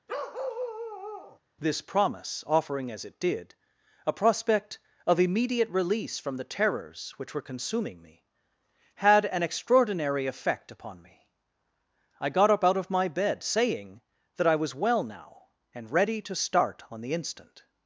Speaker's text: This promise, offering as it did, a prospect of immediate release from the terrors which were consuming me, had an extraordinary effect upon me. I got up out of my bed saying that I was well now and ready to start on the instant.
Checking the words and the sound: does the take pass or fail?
fail